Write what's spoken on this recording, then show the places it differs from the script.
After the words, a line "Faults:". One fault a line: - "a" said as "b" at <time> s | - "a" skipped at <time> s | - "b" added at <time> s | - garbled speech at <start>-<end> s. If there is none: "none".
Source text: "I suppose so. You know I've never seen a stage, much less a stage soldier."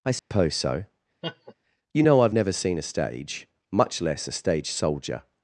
"I suppose so. You know I've never seen a stage, much less a stage soldier."
Faults:
none